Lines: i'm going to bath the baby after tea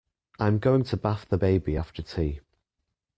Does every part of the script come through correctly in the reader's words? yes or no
yes